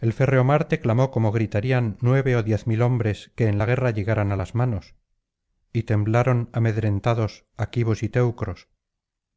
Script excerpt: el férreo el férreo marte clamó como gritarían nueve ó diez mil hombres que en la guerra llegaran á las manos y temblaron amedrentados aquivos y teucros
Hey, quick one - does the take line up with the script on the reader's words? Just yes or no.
no